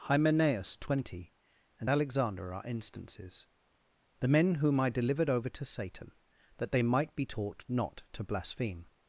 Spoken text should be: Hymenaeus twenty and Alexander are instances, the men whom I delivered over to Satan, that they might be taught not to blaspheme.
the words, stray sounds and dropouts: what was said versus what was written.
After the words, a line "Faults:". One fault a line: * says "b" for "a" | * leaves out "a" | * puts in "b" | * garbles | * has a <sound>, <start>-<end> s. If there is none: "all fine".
Hymenaeus twenty and Alexander are instances, the men whom I delivered over to Satan, that they might be taught not to blaspheme.
Faults:
all fine